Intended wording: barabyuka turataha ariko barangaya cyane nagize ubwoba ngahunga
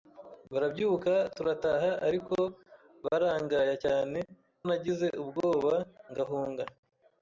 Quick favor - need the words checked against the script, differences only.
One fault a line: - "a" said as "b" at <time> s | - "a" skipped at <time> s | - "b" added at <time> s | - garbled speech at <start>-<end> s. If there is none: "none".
none